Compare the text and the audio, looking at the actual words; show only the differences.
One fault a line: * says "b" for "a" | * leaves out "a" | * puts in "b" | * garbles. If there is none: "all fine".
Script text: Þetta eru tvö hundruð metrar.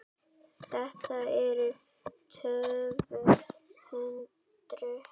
all fine